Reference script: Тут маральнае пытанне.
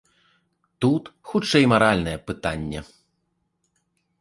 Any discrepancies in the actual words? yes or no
yes